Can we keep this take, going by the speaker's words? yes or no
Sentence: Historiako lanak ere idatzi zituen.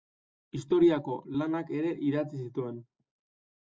yes